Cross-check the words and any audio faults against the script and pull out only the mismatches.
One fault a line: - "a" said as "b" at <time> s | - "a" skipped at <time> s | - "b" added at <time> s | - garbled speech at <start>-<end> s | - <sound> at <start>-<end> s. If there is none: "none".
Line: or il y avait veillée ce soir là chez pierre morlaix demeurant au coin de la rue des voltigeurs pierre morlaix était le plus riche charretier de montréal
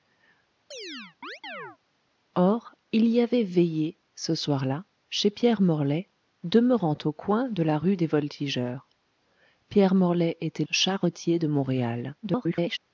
- chirp at 0.7-1.8 s
- "le plus riche" skipped at 10.6 s
- garbled speech at 12.2-12.8 s